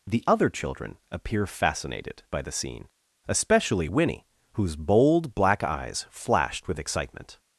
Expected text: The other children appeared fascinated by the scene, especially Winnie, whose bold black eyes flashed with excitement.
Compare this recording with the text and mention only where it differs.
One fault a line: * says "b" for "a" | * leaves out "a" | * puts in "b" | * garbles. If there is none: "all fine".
* says "appear" for "appeared"